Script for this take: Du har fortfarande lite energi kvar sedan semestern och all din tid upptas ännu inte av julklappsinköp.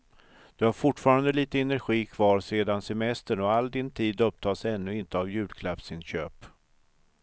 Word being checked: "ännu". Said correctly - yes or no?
yes